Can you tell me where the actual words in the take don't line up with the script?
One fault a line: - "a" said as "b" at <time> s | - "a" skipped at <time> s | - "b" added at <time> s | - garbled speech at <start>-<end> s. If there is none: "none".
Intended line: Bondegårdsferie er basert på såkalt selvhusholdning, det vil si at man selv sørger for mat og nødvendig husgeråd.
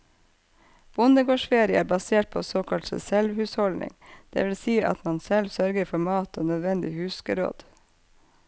none